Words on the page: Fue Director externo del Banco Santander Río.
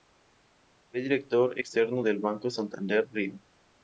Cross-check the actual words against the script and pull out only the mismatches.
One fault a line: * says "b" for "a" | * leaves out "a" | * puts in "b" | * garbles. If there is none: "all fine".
all fine